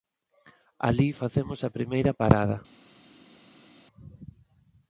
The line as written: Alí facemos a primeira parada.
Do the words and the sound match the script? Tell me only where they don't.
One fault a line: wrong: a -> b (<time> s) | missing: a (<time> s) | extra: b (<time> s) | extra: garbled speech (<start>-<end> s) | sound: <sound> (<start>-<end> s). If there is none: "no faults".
no faults